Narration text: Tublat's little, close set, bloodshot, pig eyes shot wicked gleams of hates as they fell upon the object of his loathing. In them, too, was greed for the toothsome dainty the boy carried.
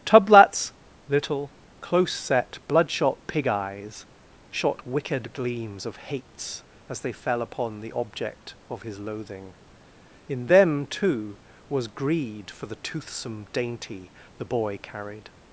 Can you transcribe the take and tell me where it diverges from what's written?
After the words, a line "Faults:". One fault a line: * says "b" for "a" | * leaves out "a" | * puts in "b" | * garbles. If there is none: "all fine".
Tublat's little, close set, bloodshot, pig eyes shot wicked gleams of hates as they fell upon the object of his loathing. In them, too, was greed for the toothsome dainty the boy carried.
Faults:
all fine